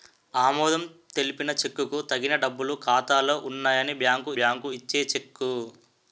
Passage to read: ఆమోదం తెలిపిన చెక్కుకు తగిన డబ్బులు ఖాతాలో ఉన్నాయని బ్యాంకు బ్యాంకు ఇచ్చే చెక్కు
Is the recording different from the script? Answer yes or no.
no